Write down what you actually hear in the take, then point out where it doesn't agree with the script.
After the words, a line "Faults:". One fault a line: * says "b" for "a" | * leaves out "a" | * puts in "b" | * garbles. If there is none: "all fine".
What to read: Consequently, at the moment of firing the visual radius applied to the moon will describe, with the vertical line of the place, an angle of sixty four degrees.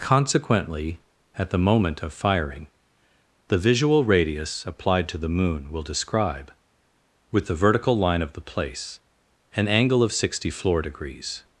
Consequently, at the moment of firing the visual radius applied to the moon will describe, with the vertical line of the place, an angle of sixty floor degrees.
Faults:
* says "floor" for "four"